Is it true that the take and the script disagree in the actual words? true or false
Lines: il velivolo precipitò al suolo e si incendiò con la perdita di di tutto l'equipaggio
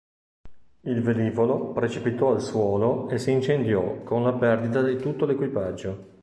true